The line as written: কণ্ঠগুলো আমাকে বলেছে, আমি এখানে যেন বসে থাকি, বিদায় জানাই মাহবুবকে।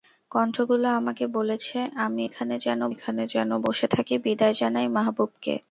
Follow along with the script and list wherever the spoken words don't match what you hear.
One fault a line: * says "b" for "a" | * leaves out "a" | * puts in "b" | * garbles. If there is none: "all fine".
* puts in "এখানে যেন"